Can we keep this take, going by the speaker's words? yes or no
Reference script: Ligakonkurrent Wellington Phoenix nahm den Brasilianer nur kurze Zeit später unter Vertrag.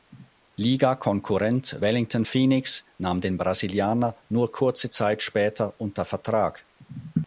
yes